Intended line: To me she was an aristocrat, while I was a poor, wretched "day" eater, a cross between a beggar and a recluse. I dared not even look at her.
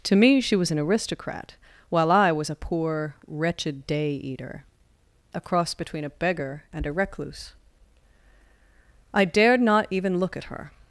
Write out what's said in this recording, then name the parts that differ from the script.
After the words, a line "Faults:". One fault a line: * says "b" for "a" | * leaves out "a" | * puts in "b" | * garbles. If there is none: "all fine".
To me she was an aristocrat, while I was a poor, wretched "day" eater, a cross between a beggar and a recluse. I dared not even look at her.
Faults:
all fine